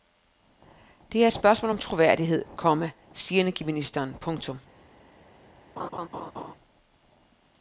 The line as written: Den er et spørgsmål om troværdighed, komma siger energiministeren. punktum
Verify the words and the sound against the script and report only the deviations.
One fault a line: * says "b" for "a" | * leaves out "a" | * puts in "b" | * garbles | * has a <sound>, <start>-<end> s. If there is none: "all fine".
* says "Det" for "Den"
* has a laugh, 5.8-6.5 s